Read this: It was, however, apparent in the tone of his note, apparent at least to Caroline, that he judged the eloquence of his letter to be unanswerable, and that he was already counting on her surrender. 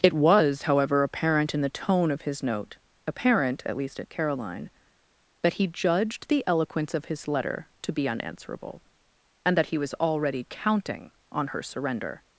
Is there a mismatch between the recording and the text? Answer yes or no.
yes